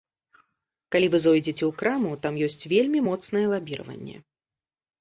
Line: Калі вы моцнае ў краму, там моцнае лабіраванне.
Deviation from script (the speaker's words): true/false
true